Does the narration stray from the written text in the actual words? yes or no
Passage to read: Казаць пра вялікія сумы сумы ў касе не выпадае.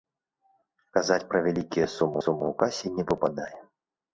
no